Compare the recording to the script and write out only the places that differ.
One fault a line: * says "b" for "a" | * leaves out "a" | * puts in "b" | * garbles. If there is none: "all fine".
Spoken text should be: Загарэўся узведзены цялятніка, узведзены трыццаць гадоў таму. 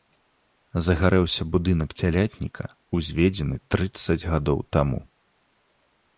* says "будынак" for "узведзены"